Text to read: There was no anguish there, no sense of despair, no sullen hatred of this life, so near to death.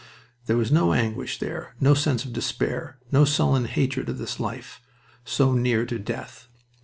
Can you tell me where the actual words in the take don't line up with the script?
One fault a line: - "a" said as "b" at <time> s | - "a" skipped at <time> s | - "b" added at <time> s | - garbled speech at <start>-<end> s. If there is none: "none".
none